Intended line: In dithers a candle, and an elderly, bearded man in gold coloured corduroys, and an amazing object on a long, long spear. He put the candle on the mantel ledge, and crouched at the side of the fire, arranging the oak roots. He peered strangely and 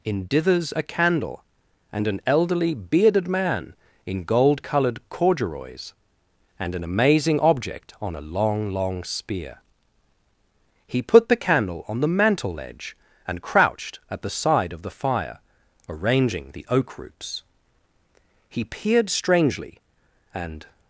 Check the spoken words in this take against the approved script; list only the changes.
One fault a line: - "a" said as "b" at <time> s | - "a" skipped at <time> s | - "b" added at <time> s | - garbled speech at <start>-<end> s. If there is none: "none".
none